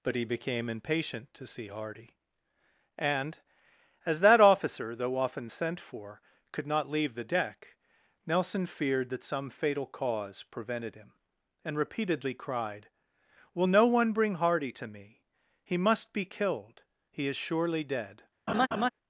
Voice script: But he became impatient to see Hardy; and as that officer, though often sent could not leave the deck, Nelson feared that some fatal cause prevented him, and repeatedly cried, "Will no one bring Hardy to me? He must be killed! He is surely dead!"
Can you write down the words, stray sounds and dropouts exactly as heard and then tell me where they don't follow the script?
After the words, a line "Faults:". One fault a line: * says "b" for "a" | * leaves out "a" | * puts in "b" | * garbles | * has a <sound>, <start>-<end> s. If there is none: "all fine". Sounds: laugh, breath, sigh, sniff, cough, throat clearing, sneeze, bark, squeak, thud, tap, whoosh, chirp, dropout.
But he became impatient to see Hardy; and as that officer, though often sent for, could not leave the deck, Nelson feared that some fatal cause prevented him, and repeatedly cried, "Will no one bring Hardy to me? He must be killed! He is surely dead!"
Faults:
* puts in "for"
* has a laugh, 18.5-18.9 s